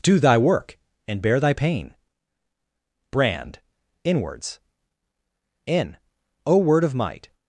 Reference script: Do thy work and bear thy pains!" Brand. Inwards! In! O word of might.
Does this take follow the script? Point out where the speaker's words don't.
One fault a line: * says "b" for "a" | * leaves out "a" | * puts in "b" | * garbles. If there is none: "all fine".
* says "pain" for "pains"